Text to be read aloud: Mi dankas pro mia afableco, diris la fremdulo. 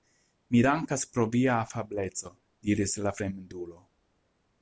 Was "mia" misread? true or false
true